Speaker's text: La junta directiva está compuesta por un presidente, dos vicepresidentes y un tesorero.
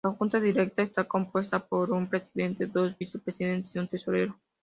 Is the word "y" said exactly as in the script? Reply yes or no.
yes